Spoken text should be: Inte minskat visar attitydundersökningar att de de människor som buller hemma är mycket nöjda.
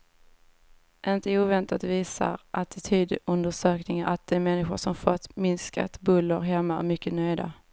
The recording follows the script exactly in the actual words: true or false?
false